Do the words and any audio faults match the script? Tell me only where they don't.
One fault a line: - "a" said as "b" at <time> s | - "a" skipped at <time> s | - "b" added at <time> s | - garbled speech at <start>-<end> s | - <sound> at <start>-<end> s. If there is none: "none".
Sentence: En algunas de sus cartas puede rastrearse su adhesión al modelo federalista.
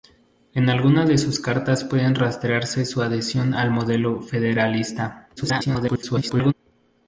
- garbled speech at 5.4-6.5 s